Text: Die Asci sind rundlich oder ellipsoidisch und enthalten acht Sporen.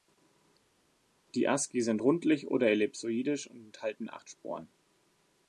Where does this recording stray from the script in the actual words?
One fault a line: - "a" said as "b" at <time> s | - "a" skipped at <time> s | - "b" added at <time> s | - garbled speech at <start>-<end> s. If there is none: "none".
none